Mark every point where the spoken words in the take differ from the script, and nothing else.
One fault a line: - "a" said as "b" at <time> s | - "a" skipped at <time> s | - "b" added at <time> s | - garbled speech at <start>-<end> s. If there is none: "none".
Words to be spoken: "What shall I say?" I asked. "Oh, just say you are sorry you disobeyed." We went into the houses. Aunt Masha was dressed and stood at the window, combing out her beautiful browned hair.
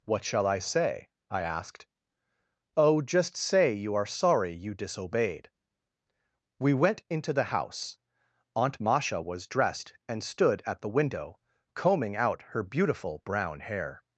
- "houses" said as "house" at 7.5 s
- "browned" said as "brown" at 13.2 s